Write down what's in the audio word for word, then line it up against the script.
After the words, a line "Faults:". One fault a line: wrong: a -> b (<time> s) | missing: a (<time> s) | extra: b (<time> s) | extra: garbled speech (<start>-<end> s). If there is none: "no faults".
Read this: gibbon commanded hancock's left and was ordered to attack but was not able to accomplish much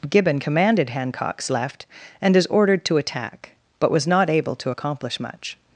gibbon commanded hancock's left and is ordered to attack but was not able to accomplish much
Faults:
wrong: was -> is (2.4 s)